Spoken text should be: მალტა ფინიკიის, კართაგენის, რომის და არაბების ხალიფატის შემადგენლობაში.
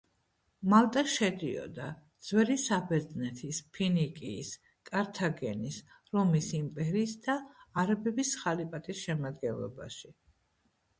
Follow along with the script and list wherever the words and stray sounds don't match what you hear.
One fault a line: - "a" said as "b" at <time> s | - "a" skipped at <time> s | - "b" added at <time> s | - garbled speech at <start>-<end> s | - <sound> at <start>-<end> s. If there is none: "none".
- "შედიოდა ძველი საბერძნეთის" added at 1.1 s
- "იმპერიის" added at 6.6 s